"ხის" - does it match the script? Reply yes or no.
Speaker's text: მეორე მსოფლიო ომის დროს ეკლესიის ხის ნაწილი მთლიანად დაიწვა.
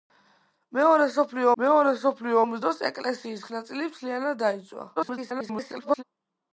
no